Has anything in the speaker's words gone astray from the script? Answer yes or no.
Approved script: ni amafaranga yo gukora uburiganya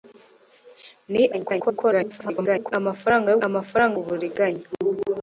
yes